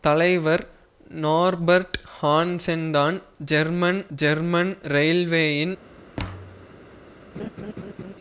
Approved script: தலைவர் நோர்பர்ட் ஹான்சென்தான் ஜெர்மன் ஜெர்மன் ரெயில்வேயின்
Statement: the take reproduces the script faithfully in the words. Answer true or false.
true